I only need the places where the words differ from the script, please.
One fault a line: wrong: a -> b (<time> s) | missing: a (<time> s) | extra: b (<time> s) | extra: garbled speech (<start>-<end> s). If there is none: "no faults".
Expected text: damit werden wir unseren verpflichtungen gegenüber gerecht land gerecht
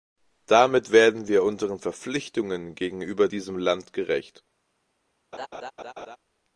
wrong: gerecht -> diesem (3.3 s)